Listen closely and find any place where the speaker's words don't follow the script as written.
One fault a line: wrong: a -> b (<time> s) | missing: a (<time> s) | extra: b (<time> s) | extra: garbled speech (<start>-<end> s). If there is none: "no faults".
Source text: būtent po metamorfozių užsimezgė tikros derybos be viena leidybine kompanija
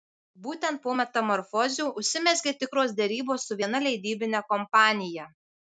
wrong: be -> su (3.5 s)